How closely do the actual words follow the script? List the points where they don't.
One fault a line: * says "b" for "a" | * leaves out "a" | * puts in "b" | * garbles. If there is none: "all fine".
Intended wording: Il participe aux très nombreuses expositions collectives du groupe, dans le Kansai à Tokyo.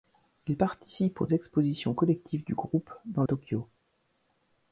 * leaves out "très nombreuses"
* leaves out "le Kansai à"